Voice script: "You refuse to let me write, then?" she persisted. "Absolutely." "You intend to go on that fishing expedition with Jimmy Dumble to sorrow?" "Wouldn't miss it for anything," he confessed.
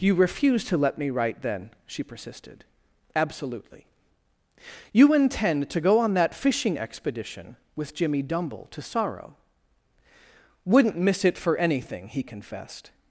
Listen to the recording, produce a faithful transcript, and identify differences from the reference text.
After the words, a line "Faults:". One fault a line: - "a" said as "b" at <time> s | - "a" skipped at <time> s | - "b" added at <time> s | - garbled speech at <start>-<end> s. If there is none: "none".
"You refuse to let me write, then?" she persisted. "Absolutely." "You intend to go on that fishing expedition with Jimmy Dumble to sorrow?" "Wouldn't miss it for anything," he confessed.
Faults:
none